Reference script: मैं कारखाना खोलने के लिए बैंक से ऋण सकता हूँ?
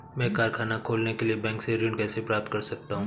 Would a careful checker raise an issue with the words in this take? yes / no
yes